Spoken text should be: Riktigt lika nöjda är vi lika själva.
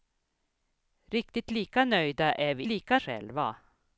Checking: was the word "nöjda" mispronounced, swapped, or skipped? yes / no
no